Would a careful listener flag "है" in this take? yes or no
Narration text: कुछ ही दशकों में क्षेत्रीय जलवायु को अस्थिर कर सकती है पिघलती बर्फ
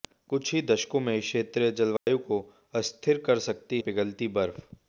yes